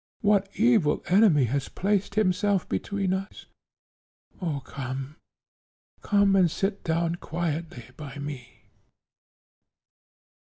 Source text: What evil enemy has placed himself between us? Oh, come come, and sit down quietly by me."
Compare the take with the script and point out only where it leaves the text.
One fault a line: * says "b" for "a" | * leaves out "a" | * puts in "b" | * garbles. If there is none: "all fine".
all fine